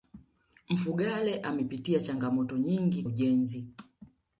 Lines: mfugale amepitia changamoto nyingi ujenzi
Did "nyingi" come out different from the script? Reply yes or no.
no